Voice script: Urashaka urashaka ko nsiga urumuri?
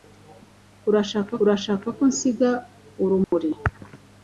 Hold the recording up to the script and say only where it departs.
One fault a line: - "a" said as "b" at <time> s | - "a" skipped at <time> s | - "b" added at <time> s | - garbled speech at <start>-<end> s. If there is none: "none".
none